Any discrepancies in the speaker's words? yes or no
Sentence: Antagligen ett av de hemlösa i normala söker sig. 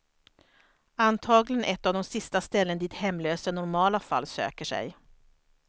yes